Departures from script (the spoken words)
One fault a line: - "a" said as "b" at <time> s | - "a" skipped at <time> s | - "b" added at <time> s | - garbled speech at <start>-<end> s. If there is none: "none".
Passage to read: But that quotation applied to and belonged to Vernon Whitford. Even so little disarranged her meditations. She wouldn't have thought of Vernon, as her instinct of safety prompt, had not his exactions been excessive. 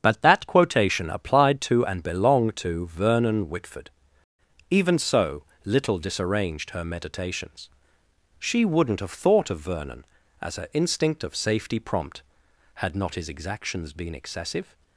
none